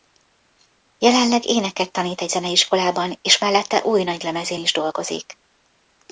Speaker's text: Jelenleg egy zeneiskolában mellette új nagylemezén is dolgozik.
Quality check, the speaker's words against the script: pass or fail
fail